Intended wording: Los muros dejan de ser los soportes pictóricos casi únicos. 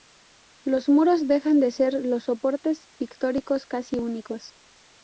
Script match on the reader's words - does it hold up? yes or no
yes